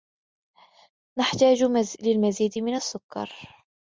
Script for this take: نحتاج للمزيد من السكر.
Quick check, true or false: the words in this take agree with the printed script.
true